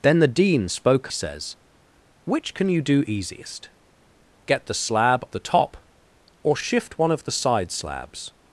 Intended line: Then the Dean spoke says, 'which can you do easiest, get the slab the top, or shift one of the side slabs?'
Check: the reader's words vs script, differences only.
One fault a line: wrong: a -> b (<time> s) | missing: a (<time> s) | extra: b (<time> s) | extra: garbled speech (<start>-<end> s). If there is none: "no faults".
no faults